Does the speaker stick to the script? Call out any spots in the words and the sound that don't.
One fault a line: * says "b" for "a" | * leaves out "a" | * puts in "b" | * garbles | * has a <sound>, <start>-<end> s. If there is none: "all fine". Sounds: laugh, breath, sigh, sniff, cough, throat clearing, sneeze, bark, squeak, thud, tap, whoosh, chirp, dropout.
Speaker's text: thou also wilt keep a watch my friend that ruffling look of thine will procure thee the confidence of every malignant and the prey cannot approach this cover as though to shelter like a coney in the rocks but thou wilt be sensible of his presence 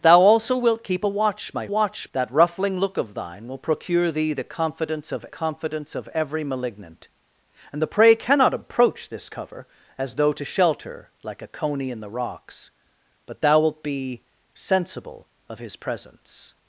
* says "watch" for "friend"
* puts in "confidence of"